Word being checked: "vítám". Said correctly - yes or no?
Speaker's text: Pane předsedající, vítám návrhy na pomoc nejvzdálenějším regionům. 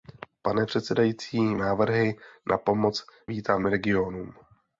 no